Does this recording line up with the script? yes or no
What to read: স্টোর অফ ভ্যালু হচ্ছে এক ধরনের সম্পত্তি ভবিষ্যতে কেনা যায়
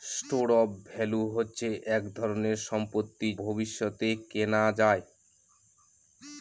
yes